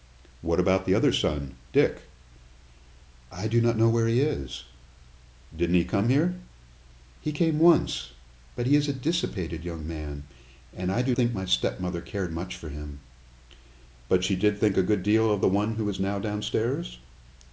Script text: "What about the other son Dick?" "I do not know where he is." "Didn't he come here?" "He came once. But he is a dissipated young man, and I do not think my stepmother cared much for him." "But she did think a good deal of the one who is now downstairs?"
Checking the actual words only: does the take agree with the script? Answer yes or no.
no